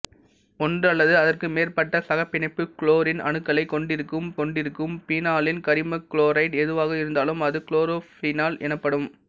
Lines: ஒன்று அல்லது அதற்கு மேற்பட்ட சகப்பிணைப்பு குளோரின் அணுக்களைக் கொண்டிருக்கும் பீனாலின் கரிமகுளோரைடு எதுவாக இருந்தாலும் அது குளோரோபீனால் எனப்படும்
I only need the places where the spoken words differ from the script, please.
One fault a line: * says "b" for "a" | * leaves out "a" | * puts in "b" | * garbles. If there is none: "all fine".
* puts in "கொண்டிருக்கும்"